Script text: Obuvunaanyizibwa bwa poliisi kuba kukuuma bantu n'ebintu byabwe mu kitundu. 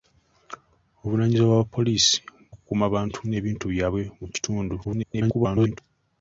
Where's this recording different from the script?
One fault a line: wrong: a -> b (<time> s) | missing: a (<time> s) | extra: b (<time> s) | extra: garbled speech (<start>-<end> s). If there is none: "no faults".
missing: kuba (2.1 s)
extra: garbled speech (4.8-5.8 s)